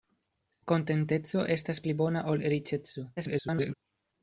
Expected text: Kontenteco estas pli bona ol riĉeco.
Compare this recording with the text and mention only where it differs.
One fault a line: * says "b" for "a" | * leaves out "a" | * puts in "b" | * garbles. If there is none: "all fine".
* garbles